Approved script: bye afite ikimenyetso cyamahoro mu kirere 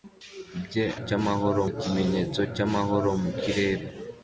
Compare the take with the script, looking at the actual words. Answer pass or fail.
fail